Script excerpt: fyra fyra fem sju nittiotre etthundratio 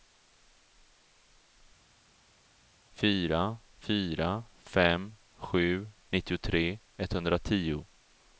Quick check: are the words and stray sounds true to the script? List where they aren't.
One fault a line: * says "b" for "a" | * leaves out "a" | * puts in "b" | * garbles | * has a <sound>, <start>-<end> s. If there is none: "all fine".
all fine